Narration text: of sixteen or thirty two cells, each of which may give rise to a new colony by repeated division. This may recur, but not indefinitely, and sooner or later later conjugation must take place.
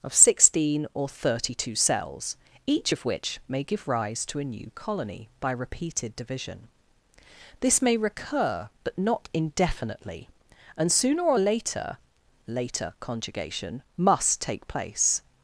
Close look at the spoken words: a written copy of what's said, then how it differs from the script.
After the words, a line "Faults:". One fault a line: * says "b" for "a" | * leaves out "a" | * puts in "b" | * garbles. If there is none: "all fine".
of sixteen or thirty two cells, each of which may give rise to a new colony by repeated division. This may recur, but not indefinitely, and sooner or later later conjugation must take place.
Faults:
all fine